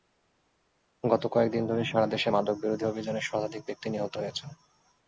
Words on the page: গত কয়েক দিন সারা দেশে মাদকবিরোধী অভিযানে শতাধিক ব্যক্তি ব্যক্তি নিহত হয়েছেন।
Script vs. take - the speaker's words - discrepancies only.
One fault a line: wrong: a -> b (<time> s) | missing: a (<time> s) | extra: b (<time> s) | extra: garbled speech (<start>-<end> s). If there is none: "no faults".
extra: ধরে (1.7 s)
missing: ব্যক্তি (3.9 s)